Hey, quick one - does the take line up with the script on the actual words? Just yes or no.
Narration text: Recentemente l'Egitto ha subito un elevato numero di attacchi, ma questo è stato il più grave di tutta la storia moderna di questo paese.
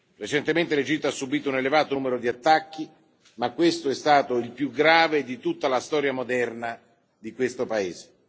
yes